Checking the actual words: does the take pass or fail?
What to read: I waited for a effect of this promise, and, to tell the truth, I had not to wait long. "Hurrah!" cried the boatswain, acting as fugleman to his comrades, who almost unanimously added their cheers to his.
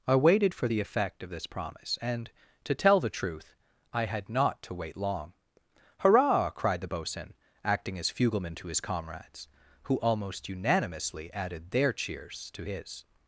fail